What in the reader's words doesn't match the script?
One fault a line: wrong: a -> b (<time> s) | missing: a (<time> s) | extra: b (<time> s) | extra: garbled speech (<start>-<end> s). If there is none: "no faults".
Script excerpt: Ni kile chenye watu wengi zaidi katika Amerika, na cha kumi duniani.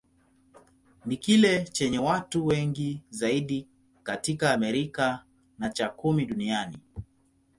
no faults